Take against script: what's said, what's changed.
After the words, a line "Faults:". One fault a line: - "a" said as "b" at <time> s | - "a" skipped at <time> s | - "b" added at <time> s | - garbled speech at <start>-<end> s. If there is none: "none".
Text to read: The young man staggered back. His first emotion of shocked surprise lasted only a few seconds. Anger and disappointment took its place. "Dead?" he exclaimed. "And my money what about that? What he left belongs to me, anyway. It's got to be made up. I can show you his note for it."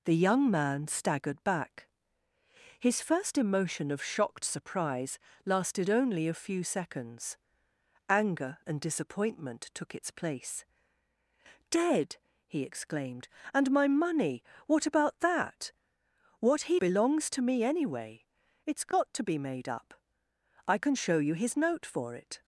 The young man staggered back. His first emotion of shocked surprise lasted only a few seconds. Anger and disappointment took its place. "Dead?" he exclaimed. "And my money what about that? What he belongs to me, anyway. It's got to be made up. I can show you his note for it."
Faults:
- "left" skipped at 16.8 s